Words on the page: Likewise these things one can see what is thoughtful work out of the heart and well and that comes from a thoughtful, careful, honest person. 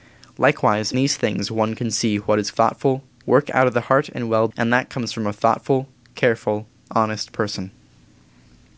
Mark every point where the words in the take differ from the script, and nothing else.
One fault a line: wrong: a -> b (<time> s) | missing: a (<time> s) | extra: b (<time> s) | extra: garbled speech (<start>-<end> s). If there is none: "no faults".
no faults